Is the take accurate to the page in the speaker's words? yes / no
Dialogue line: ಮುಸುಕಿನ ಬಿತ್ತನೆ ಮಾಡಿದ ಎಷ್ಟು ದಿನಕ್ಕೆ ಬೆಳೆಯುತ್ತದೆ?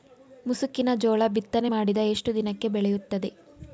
no